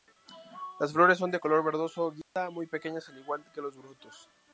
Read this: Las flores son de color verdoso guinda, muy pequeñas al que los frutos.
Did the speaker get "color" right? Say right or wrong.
right